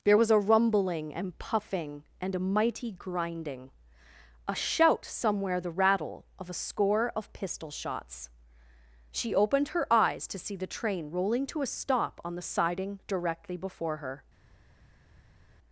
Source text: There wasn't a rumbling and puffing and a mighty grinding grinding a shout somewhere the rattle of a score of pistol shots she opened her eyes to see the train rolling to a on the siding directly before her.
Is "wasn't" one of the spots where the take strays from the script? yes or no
yes